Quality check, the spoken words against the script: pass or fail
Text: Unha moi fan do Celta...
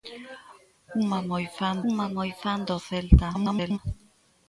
fail